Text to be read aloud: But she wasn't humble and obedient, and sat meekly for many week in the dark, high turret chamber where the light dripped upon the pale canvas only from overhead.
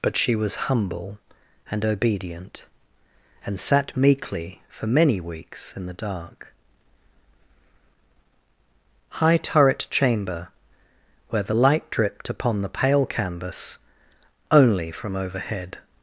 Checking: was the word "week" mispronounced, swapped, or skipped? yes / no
yes